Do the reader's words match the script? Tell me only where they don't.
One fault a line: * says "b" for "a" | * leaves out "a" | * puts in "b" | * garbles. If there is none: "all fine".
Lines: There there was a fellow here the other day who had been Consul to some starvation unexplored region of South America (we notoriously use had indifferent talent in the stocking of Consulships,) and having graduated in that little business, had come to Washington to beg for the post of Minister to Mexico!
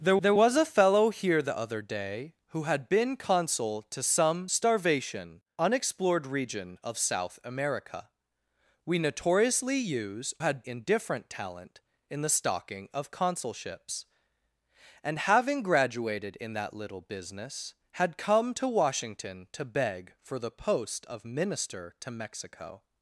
all fine